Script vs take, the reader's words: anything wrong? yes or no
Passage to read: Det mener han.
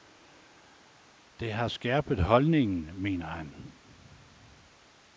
yes